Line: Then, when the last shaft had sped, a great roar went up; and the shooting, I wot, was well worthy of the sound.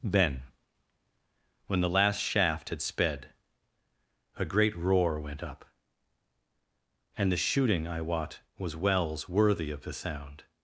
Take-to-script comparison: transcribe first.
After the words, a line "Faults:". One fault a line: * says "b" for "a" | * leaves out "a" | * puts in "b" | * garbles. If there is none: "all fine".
Then, when the last shaft had sped, a great roar went up; and the shooting, I wot, was wells worthy of the sound.
Faults:
* says "wells" for "well"